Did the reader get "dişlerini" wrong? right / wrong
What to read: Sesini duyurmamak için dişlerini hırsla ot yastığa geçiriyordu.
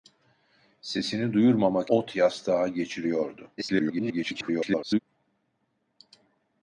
wrong